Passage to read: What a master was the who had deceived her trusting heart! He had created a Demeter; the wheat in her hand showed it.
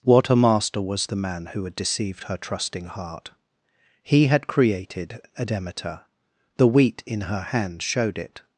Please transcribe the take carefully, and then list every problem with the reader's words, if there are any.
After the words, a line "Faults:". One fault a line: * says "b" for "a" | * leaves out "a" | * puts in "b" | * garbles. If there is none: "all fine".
What a master was the man who had deceived her trusting heart! He had created a Demeter; the wheat in her hand showed it.
Faults:
* puts in "man"